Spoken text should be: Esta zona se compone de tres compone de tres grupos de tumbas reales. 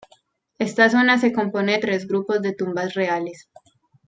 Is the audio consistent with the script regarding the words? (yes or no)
no